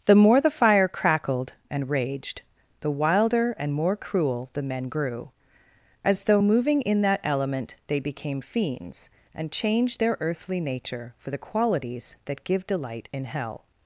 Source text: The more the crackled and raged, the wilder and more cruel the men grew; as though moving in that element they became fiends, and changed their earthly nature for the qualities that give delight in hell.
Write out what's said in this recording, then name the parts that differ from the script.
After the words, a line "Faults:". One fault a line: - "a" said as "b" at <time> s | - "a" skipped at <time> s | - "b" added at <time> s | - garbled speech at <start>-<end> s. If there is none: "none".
The more the fire crackled and raged, the wilder and more cruel the men grew; as though moving in that element they became fiends, and changed their earthly nature for the qualities that give delight in hell.
Faults:
- "fire" added at 0.5 s